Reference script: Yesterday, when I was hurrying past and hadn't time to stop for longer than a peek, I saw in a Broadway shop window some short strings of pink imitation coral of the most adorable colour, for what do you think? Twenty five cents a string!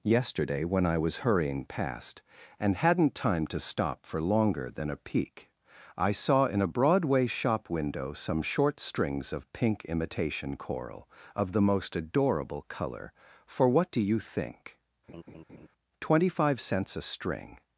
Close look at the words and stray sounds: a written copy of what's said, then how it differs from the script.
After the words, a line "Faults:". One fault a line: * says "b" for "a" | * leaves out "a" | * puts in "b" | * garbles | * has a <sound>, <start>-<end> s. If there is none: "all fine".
Yesterday, when I was hurrying past and hadn't time to stop for longer than a peek, I saw in a Broadway shop window some short strings of pink imitation coral of the most adorable colour, for what do you think? Twenty five cents a string!
Faults:
* has a laugh, 15.1-15.7 s